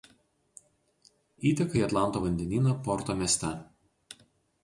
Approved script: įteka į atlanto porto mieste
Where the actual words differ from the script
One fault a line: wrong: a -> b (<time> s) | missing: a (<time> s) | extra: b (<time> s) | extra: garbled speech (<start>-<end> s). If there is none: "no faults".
extra: vandenyną (2.2 s)